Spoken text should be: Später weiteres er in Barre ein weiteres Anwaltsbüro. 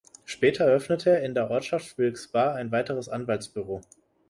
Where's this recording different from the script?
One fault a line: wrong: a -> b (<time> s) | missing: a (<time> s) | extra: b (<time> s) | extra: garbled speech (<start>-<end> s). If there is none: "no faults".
wrong: weiteres -> eröffnete (0.7 s)
extra: der Ortschaft Wilkes (1.3 s)